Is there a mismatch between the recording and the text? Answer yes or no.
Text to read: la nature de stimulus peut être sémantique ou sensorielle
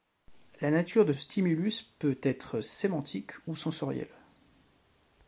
no